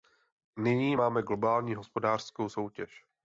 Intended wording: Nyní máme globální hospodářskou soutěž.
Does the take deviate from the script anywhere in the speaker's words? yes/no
no